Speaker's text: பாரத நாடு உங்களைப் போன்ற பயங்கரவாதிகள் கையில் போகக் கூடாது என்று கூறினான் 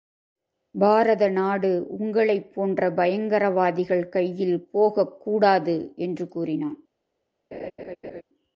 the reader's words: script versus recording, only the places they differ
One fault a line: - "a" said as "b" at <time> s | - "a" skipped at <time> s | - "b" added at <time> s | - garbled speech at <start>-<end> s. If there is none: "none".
none